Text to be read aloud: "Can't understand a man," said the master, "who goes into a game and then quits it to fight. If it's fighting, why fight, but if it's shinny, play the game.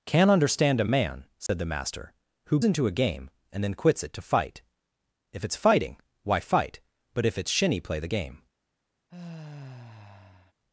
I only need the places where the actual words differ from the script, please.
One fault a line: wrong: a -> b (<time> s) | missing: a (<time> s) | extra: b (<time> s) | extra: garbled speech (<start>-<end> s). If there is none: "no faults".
missing: goes (2.6 s)